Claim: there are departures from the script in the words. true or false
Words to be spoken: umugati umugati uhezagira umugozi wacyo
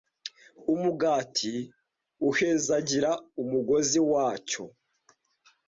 true